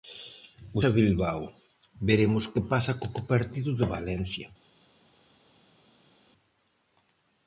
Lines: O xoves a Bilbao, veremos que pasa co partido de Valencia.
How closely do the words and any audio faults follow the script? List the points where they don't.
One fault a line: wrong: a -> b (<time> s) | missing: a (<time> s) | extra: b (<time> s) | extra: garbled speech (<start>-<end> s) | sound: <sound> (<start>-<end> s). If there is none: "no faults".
missing: xoves (0.8 s)
extra: co (3.1 s)